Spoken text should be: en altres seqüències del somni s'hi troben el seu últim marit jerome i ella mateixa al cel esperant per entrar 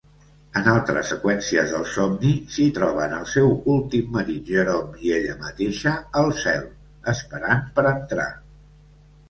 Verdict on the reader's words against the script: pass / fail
pass